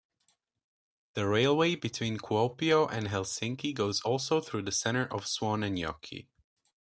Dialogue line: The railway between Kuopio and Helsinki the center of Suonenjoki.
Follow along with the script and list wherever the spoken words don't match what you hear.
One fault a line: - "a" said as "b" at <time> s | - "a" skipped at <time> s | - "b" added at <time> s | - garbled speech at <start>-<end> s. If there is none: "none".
- "goes also through" added at 3.8 s